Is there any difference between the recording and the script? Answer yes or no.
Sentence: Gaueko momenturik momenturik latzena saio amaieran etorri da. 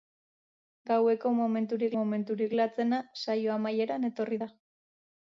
no